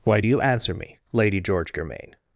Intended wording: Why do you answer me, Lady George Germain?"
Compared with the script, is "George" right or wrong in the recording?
right